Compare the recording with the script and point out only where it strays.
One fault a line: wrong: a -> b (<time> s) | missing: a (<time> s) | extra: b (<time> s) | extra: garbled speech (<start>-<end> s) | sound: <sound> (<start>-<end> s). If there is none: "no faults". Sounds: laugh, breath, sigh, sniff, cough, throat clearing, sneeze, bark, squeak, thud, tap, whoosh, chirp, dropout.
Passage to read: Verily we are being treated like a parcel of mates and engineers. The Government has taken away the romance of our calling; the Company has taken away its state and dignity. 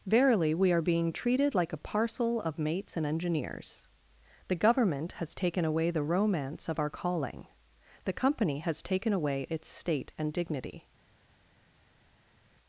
no faults